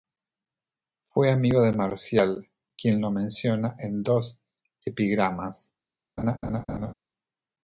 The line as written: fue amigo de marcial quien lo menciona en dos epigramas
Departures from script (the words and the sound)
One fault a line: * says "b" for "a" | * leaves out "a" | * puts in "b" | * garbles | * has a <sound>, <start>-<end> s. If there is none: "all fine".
* has a laugh, 6.2-6.9 s